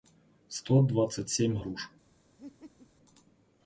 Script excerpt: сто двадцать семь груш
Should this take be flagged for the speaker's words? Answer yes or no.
no